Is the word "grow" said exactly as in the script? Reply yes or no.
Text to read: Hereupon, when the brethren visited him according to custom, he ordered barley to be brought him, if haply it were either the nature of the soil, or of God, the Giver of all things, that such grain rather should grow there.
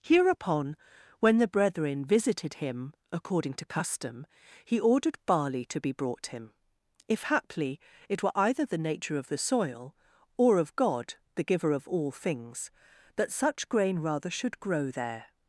yes